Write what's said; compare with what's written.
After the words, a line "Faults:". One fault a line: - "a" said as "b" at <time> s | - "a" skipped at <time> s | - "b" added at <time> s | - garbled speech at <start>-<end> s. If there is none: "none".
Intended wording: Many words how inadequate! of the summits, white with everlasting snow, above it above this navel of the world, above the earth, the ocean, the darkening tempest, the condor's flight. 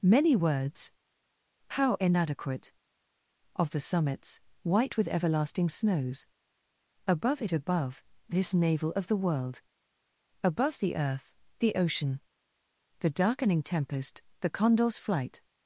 Many words how inadequate! of the summits, white with everlasting snows, above it above this navel of the world, above the earth, the ocean, the darkening tempest, the condor's flight.
Faults:
- "snow" said as "snows" at 5.7 s